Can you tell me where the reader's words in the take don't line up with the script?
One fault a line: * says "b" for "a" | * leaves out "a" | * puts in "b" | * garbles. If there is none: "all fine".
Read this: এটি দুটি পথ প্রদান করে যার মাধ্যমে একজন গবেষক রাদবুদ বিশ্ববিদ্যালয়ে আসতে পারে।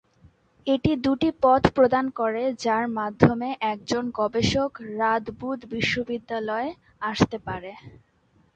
all fine